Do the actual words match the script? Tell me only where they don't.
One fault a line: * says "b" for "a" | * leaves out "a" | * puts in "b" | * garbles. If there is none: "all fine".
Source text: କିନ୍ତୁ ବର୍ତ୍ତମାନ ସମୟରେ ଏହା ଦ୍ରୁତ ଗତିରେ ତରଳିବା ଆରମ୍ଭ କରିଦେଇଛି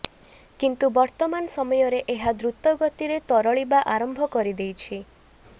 all fine